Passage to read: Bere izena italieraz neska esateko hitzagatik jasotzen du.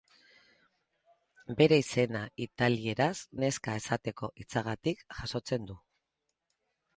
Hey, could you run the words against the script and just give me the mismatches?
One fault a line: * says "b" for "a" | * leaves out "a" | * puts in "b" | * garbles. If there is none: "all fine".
all fine